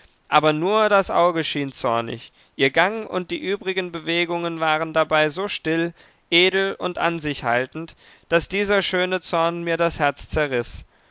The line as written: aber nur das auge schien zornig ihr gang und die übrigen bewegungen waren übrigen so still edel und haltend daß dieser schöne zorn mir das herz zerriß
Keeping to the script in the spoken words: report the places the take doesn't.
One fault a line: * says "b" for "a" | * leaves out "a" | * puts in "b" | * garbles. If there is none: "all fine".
* says "dabei" for "übrigen"
* puts in "an sich"